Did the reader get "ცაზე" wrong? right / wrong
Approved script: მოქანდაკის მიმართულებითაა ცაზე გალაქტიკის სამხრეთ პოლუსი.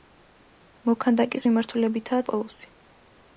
wrong